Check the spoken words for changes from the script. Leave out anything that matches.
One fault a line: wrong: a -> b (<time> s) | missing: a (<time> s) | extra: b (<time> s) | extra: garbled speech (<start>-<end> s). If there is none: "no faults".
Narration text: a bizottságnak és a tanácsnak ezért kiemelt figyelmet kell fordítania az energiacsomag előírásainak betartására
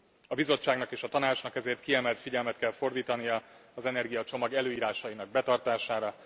no faults